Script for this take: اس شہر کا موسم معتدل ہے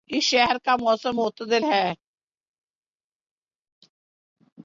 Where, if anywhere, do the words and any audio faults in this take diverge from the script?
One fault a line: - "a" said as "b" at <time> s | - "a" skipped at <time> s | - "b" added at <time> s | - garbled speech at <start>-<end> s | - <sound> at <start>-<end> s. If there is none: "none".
none